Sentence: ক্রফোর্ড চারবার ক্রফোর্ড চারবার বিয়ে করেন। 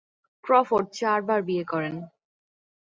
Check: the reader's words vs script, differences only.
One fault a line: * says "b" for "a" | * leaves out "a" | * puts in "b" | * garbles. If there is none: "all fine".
* leaves out "ক্রফোর্ড চারবার"